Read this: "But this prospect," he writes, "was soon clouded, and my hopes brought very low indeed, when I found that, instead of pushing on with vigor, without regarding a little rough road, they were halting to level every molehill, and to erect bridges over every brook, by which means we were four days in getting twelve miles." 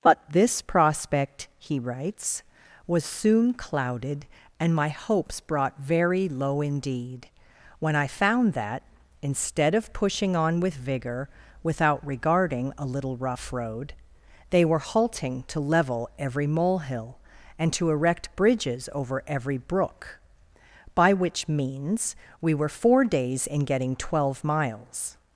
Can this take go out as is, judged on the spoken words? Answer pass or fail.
pass